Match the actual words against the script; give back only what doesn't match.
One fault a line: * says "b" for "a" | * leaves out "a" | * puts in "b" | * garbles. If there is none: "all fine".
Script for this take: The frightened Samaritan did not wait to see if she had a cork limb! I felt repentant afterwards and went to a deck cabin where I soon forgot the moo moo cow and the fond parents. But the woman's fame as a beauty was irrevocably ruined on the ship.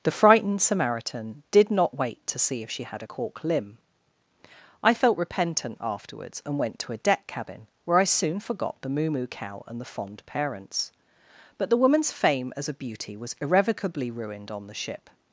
all fine